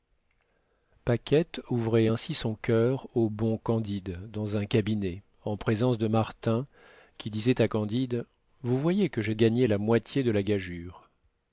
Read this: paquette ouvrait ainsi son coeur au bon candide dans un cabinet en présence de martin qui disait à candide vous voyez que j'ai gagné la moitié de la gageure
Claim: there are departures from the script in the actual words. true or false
false